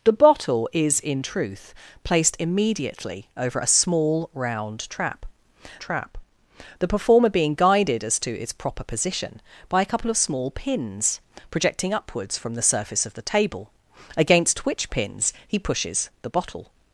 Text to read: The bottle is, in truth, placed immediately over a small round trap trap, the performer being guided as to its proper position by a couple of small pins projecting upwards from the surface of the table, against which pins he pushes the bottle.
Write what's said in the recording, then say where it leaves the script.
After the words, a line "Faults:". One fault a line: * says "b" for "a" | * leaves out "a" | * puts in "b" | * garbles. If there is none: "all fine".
The bottle is, in truth, placed immediately over a small round trap trap, the performer being guided as to its proper position by a couple of small pins projecting upwards from the surface of the table, against which pins he pushes the bottle.
Faults:
all fine